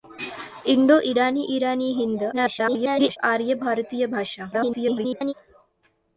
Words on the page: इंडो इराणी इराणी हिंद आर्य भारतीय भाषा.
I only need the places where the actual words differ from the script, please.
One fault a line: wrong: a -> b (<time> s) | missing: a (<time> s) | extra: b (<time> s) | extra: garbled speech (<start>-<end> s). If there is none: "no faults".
extra: garbled speech (2.3-3.2 s)
extra: garbled speech (4.5-5.3 s)